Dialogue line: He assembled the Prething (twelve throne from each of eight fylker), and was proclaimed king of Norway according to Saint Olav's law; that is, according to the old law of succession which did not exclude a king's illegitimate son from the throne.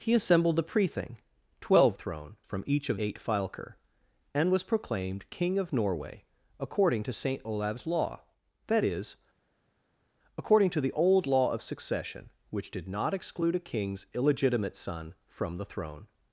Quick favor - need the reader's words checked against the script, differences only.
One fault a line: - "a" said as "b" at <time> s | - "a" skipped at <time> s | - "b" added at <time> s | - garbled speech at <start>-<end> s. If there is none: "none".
none